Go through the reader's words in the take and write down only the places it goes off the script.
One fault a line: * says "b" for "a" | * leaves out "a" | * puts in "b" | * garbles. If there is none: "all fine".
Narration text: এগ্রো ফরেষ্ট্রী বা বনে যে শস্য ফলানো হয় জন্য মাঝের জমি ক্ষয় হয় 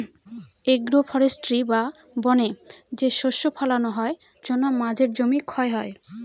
all fine